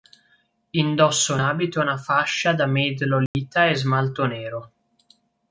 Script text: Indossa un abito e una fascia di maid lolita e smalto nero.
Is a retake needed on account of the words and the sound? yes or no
yes